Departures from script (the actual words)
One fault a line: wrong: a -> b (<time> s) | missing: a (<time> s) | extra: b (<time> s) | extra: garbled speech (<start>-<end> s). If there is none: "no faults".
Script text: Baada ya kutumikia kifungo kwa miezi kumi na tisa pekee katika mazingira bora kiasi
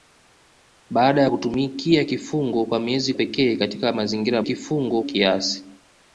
missing: kumi na tisa (3.1 s)
wrong: bora -> kifungo (4.4 s)